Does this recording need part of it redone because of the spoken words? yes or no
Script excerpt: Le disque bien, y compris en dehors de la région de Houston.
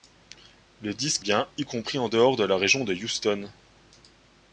no